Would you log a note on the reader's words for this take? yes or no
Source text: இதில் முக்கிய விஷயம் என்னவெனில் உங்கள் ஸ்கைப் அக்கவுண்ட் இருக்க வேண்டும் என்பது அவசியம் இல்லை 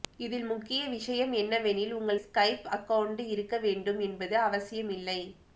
no